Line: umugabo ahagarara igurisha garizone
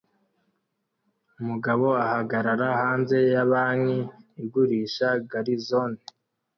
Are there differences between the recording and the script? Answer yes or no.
yes